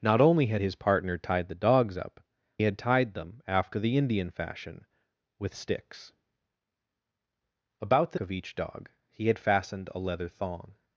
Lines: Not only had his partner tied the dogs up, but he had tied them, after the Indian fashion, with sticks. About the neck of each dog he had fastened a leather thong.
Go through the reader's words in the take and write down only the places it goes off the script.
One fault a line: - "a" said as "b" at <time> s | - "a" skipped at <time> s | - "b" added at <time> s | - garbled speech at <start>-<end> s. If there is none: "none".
- "but he" skipped at 2.2 s
- "neck" skipped at 8.2 s